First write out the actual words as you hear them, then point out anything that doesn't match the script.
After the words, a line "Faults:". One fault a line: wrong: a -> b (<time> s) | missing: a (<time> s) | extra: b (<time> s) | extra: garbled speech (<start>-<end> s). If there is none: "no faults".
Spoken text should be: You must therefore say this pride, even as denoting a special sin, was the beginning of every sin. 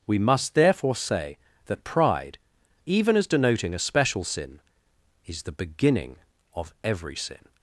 We must therefore say that pride, even as denoting a special sin, is the beginning of every sin.
Faults:
wrong: You -> We (0.1 s)
wrong: this -> that (1.7 s)
wrong: was -> is (5.3 s)